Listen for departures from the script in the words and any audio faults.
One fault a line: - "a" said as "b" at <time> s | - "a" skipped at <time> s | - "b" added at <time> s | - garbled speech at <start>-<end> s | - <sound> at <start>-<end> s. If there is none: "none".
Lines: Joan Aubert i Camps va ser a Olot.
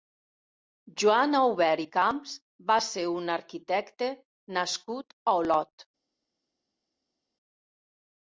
- "un arquitecte nascut" added at 3.1 s